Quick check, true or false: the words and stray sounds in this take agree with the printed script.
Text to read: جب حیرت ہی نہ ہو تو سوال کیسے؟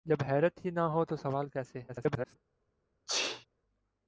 false